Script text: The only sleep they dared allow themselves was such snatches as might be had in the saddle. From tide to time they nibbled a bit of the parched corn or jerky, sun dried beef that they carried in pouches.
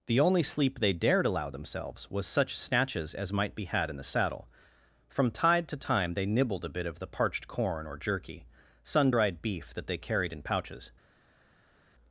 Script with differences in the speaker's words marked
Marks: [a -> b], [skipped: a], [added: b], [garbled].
The only sleep they dared allow themselves was such snatches as might be had in the saddle. From tide to time they nibbled a bit of the parched corn or jerky, sun dried beef that they carried in pouches.